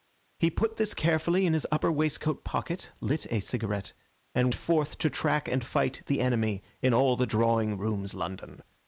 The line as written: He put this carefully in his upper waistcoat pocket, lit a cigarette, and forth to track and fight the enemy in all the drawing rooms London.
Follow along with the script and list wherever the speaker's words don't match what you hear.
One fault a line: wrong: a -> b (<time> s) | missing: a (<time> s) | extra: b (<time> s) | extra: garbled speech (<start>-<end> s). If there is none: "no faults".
no faults